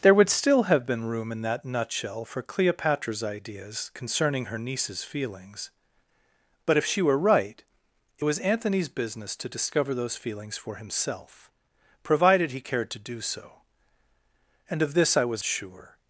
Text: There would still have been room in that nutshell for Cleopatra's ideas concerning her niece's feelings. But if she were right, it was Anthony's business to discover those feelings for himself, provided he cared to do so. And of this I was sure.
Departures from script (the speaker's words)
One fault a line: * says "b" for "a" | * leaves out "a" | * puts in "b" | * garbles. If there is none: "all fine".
all fine